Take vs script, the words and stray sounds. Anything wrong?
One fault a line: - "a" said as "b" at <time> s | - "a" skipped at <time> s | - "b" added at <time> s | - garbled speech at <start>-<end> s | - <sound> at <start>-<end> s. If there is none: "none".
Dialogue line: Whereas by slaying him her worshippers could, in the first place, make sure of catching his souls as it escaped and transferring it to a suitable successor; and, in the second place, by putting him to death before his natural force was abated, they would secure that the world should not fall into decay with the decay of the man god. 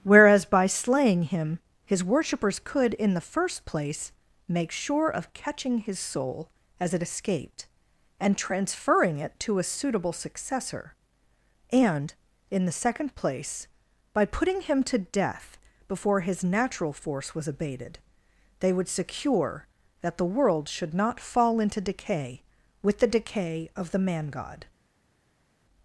- "her" said as "his" at 1.9 s
- "souls" said as "soul" at 6.0 s